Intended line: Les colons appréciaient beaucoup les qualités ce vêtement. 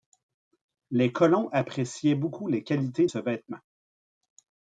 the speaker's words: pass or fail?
pass